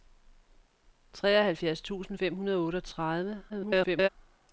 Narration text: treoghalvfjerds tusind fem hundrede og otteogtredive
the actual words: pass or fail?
fail